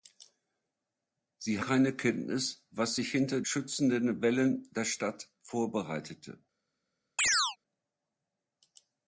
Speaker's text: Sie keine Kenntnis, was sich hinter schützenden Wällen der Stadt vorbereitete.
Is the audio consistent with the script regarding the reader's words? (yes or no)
yes